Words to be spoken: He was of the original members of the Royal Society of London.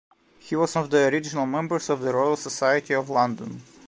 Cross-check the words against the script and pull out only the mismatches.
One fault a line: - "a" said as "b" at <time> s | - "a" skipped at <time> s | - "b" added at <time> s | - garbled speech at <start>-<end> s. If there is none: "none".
none